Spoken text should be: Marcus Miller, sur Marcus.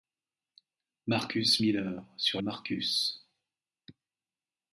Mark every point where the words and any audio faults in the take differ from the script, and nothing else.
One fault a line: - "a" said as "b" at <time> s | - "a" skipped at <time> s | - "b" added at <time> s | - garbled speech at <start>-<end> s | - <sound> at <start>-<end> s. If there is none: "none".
none